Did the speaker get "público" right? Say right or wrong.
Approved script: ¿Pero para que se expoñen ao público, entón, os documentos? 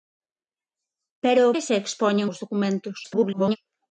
wrong